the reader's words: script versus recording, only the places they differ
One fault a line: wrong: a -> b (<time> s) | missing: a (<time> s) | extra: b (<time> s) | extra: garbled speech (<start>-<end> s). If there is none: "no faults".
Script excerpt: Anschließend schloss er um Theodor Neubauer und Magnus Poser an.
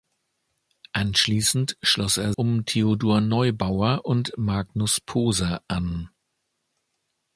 no faults